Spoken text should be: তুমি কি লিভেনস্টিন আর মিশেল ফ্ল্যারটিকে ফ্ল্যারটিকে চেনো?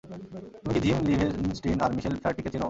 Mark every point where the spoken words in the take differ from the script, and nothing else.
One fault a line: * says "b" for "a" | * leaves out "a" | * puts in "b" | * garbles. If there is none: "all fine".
* puts in "জিম"
* leaves out "ফ্ল্যারটিকে"